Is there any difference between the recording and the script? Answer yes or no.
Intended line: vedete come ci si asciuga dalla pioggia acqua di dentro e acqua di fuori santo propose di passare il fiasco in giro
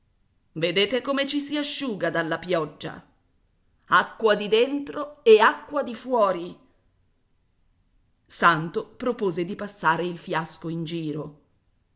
no